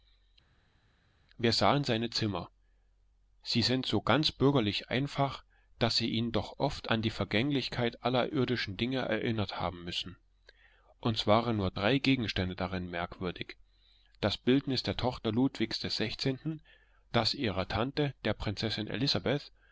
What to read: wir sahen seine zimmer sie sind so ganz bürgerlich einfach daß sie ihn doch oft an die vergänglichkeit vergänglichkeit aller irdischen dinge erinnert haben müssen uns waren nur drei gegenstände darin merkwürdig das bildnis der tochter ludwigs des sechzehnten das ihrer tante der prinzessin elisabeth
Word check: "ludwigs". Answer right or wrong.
right